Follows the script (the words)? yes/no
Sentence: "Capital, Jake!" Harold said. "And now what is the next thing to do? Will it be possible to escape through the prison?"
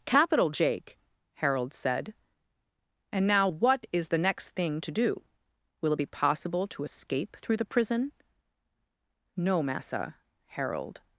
no